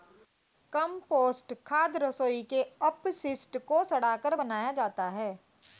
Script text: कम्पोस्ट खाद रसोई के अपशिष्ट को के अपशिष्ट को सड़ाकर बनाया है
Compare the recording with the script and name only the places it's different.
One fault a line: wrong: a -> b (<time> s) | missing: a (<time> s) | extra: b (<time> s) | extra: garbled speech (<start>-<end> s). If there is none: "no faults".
missing: के अपशिष्ट को (3.8 s)
extra: जाता (4.7 s)